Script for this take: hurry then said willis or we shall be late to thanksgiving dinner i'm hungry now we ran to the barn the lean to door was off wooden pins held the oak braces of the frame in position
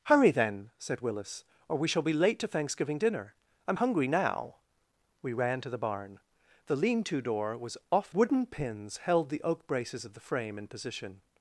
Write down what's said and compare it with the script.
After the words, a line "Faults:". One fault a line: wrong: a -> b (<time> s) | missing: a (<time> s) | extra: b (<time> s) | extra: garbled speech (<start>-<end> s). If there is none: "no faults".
hurry then said willis or we shall be late to thanksgiving dinner i'm hungry now we ran to the barn the lean to door was off wooden pins held the oak braces of the frame in position
Faults:
no faults